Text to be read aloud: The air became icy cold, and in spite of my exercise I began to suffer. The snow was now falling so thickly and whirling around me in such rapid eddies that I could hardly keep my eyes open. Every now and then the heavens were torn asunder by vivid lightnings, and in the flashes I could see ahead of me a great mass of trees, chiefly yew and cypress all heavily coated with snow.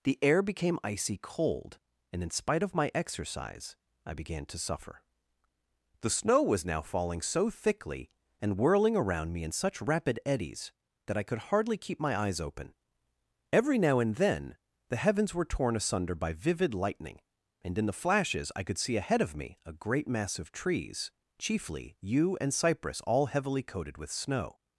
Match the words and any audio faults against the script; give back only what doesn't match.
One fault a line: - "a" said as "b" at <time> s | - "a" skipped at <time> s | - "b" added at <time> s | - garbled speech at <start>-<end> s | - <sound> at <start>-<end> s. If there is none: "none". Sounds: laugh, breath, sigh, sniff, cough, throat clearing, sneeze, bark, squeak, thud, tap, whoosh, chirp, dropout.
- "lightnings" said as "lightning" at 16.7 s